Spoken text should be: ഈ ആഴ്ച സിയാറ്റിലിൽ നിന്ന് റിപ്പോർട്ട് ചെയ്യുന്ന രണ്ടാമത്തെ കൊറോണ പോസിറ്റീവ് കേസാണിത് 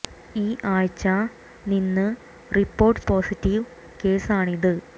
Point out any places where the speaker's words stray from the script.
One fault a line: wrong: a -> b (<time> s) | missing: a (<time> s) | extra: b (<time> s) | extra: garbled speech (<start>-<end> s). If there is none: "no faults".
missing: സിയാറ്റിലിൽ (1.0 s)
missing: ചെയ്യുന്ന രണ്ടാമത്തെ കൊറോണ (3.0 s)